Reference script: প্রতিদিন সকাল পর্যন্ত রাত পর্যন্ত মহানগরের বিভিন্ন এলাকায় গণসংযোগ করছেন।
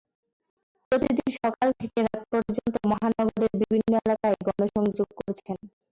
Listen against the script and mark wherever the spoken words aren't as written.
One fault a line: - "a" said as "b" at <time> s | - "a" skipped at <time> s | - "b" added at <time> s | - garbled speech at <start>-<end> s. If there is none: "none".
- "পর্যন্ত" said as "থেকে" at 1.8 s